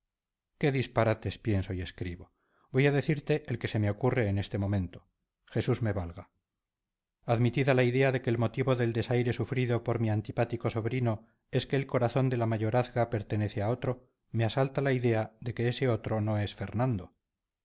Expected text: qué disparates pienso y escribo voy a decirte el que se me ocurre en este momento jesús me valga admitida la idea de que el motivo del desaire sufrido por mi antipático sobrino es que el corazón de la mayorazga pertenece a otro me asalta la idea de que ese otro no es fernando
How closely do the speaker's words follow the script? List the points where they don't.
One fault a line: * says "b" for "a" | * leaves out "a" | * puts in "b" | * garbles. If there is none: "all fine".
all fine